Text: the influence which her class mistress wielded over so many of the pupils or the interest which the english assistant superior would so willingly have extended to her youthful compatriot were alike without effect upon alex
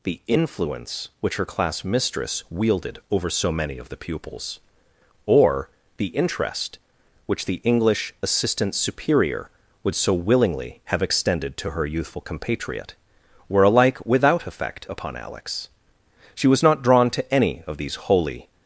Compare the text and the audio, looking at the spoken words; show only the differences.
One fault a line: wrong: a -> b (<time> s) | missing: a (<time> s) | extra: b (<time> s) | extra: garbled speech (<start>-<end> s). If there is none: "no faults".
extra: she was not drawn to any of these holy (16.3 s)